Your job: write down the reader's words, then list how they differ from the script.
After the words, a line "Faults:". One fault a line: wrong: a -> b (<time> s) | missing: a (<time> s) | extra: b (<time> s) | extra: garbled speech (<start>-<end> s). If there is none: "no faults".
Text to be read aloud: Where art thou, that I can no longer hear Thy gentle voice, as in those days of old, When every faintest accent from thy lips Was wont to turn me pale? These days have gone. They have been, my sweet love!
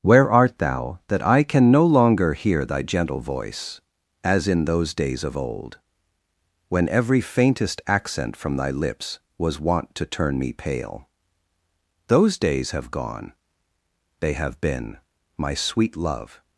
Where art thou, that I can no longer hear Thy gentle voice, as in those days of old, When every faintest accent from thy lips Was wont to turn me pale? Those days have gone. They have been, my sweet love!
Faults:
wrong: These -> Those (12.1 s)